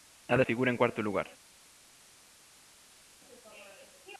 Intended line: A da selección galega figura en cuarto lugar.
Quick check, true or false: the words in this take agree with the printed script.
false